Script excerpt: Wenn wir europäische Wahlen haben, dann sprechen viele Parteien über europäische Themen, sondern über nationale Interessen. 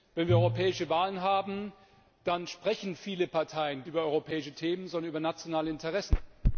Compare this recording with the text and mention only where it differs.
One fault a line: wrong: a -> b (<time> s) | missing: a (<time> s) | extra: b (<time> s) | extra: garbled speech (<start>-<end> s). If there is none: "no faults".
no faults